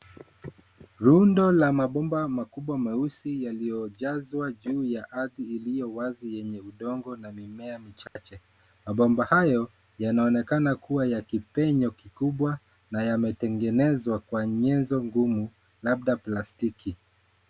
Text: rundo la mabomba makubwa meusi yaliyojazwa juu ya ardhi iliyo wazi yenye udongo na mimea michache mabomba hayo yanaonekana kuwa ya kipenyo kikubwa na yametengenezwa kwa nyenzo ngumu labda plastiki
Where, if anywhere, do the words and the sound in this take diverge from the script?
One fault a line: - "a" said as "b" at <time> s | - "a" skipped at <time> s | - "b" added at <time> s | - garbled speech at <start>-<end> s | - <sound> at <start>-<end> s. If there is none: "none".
- dropout at 8.1-8.2 s